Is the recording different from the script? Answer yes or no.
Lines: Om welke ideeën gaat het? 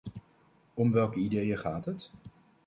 no